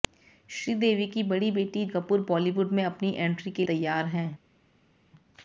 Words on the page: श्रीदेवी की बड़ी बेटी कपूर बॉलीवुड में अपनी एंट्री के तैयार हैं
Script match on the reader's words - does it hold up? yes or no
yes